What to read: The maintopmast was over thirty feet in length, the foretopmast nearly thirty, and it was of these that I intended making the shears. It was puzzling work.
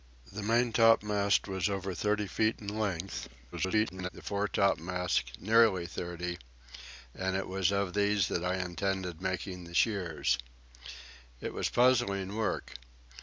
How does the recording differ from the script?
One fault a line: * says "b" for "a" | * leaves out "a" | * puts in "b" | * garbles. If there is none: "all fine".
* garbles